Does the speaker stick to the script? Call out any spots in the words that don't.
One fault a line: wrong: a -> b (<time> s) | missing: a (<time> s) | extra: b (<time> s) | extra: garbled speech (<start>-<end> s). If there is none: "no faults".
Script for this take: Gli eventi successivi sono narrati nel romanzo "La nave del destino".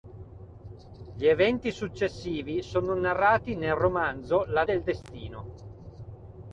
missing: nave (4.7 s)